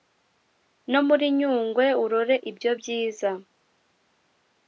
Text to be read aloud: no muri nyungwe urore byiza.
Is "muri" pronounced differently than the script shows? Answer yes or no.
no